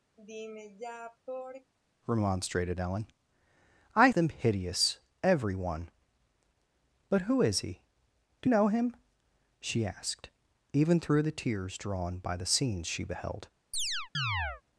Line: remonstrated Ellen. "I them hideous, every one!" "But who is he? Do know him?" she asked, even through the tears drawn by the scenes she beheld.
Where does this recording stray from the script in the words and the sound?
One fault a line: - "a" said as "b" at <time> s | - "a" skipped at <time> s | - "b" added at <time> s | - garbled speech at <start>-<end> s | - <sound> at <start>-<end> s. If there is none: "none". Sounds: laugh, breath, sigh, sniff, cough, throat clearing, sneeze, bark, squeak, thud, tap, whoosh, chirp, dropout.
- sigh at 0.2-1.7 s
- chirp at 13.7-14.6 s